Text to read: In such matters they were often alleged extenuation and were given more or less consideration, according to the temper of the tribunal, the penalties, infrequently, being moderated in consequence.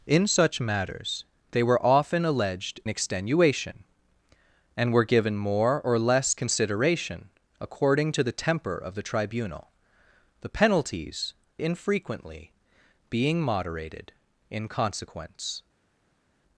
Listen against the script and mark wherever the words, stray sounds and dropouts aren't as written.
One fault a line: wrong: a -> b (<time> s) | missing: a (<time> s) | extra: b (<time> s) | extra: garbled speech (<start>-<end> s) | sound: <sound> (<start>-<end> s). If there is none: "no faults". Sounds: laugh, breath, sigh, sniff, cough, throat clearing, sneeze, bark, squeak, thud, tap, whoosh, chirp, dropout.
no faults